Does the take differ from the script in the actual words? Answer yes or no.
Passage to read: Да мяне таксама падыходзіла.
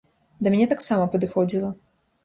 no